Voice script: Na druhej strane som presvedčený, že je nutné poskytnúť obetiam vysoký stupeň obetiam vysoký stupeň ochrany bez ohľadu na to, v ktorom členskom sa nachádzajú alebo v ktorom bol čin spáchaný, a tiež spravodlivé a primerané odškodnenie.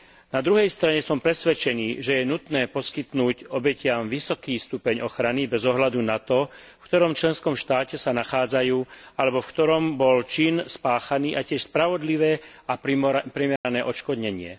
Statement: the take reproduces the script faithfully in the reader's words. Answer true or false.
false